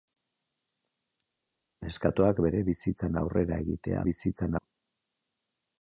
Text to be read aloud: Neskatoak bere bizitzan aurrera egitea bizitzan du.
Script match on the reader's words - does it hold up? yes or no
yes